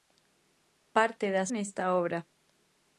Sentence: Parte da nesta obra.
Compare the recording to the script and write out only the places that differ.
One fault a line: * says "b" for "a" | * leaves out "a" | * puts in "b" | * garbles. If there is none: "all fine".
all fine